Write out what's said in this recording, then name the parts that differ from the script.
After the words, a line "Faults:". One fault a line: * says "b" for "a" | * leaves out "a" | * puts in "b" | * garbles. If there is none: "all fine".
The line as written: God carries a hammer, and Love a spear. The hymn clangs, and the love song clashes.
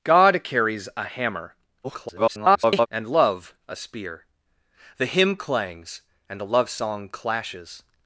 God carries a hammer, [garbled] and Love a spear. The hymn clangs, and the love song clashes.
Faults:
* garbles